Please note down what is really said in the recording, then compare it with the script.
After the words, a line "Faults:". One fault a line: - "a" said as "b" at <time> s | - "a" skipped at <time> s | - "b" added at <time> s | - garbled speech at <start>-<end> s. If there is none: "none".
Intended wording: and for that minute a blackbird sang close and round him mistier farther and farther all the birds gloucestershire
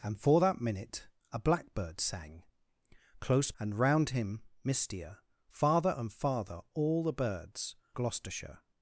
and for that minute a blackbird sang close and round him mistier farther and farther all the birds gloucestershire
Faults:
none